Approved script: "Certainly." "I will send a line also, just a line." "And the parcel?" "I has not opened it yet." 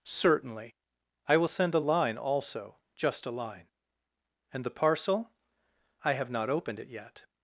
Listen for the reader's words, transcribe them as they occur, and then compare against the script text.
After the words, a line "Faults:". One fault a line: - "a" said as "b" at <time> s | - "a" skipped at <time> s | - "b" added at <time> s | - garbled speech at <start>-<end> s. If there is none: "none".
"Certainly." "I will send a line also, just a line." "And the parcel?" "I have not opened it yet."
Faults:
- "has" said as "have" at 6.1 s